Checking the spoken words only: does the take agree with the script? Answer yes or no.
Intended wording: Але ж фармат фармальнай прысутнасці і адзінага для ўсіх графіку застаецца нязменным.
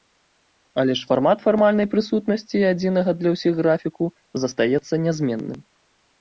yes